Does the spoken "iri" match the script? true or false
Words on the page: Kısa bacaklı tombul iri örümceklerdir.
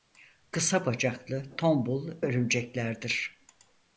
false